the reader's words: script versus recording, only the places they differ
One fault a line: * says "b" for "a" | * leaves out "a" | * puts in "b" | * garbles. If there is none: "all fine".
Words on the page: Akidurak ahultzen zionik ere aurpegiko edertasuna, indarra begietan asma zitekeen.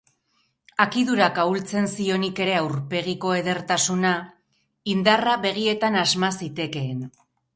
all fine